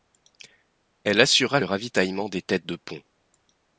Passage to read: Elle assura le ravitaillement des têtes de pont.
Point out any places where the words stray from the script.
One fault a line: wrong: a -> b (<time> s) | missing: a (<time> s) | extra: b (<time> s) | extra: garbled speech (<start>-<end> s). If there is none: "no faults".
no faults